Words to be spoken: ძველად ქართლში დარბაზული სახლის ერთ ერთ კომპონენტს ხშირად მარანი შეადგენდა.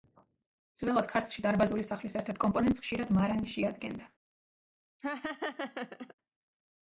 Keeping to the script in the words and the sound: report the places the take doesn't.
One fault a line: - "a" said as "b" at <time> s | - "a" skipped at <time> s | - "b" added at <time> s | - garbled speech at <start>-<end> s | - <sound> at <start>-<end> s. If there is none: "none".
- laugh at 5.0-6.1 s